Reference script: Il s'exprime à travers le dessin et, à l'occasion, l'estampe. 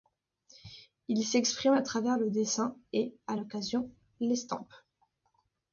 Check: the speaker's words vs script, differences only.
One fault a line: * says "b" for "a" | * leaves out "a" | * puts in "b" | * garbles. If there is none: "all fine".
all fine